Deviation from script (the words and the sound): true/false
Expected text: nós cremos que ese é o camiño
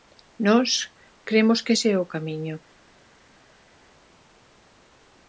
false